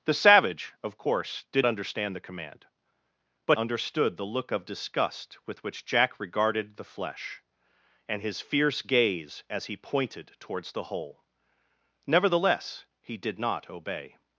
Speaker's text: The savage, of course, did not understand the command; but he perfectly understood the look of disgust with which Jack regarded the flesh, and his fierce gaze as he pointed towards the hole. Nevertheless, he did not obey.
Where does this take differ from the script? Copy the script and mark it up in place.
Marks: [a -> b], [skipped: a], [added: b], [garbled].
The savage, of course, did [skipped: not] understand the command; but [skipped: he perfectly] understood the look of disgust with which Jack regarded the flesh, and his fierce gaze as he pointed towards the hole. Nevertheless, he did not obey.